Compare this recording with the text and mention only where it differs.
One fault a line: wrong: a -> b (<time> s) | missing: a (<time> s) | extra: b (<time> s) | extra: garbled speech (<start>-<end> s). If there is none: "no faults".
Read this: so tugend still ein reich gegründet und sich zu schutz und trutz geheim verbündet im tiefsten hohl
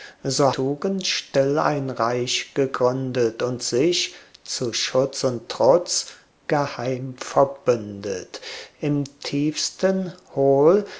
no faults